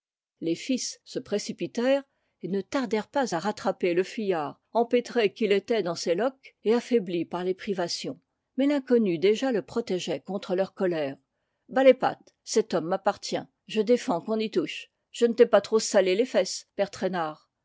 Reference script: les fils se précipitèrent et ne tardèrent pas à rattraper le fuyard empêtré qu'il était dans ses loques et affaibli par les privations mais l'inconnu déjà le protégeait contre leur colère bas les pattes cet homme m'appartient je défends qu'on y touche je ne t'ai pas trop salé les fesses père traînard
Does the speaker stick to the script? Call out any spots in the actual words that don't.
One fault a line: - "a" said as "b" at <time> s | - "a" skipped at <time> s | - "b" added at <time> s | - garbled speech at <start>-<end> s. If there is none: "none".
none